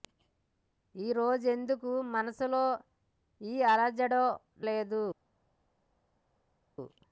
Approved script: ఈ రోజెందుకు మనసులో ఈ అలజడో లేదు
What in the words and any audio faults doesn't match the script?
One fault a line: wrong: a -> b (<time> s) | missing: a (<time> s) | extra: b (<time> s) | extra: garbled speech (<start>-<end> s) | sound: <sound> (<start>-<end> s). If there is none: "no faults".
no faults